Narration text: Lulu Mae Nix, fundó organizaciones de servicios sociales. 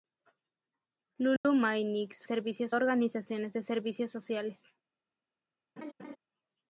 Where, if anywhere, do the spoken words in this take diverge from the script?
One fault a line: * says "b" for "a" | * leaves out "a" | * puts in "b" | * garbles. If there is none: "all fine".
* says "servicios" for "fundó"